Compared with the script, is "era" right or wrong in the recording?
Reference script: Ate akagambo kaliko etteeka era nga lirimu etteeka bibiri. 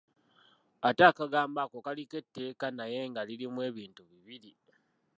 wrong